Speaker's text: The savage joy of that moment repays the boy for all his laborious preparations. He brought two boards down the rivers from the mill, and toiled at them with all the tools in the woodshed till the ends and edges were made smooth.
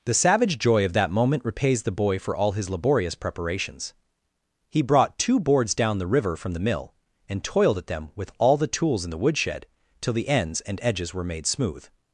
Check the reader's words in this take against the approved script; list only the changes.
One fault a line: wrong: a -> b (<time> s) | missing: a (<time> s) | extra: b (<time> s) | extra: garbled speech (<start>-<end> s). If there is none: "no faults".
wrong: rivers -> river (6.1 s)